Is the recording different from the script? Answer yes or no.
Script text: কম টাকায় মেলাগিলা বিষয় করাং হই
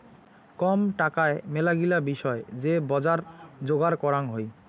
yes